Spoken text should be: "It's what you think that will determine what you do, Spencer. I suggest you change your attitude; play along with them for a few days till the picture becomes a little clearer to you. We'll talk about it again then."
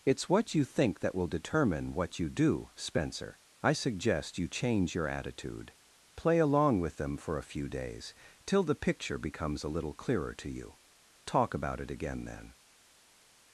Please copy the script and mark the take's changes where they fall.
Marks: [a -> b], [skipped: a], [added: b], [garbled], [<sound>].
"It's what you think that will determine what you do, Spencer. I suggest you change your attitude; play along with them for a few days till the picture becomes a little clearer to you. [skipped: We'll] talk about it again then."